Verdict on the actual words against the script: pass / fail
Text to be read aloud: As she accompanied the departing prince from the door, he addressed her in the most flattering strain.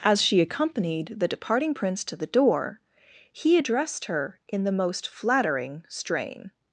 fail